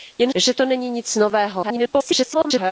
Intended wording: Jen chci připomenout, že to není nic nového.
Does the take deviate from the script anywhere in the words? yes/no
yes